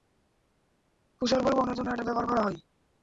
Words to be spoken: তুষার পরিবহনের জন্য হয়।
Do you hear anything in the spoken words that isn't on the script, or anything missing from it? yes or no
yes